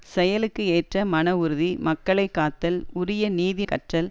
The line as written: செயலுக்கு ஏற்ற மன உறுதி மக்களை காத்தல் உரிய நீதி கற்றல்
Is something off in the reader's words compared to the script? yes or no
no